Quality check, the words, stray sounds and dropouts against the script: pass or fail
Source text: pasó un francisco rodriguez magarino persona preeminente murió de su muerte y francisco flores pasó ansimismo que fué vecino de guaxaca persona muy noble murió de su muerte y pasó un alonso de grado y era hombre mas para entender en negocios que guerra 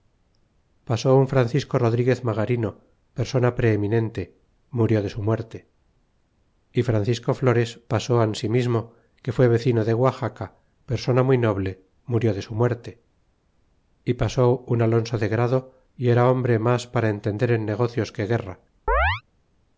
fail